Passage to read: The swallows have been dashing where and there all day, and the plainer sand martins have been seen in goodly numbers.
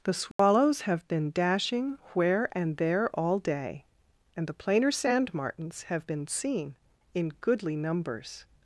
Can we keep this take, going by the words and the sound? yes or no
no